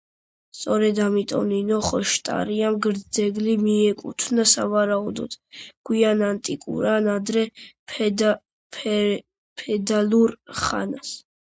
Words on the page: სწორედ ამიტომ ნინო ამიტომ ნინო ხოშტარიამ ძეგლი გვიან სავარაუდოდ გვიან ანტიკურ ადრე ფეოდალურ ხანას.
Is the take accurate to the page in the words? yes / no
no